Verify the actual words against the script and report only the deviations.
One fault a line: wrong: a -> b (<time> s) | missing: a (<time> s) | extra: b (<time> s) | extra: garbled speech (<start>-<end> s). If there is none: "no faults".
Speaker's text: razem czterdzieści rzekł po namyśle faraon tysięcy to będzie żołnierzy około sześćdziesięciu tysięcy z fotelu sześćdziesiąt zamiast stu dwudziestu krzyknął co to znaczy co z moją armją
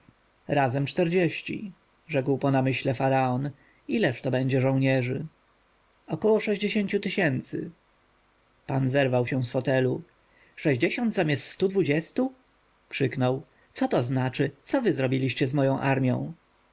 wrong: tysięcy -> ileż (3.9 s)
extra: pan zerwał się (8.7 s)
extra: wy zrobiliście (14.8 s)